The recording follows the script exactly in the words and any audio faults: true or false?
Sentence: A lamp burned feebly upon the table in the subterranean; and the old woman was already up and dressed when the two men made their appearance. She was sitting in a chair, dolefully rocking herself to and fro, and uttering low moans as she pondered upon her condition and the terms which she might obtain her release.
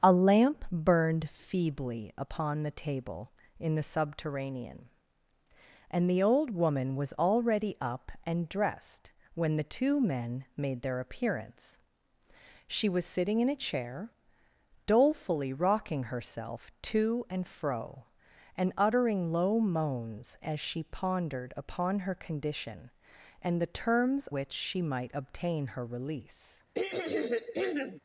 false